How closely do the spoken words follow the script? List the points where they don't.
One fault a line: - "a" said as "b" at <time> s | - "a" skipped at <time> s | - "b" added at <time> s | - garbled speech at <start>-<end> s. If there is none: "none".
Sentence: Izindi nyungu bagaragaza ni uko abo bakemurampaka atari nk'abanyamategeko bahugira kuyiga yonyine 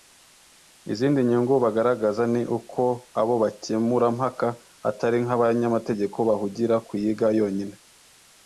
none